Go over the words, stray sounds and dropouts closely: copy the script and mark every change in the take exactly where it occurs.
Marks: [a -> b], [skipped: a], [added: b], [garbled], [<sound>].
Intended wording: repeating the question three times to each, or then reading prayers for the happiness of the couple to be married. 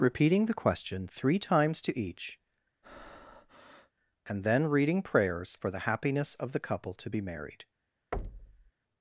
repeating the question three times to each, [breath] [or -> and] then reading prayers for the happiness of the couple to be married. [thud]